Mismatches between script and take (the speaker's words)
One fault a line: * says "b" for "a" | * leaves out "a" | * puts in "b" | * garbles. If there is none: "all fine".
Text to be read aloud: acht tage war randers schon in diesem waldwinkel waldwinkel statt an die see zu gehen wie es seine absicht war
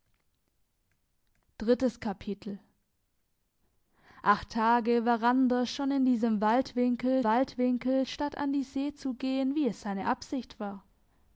all fine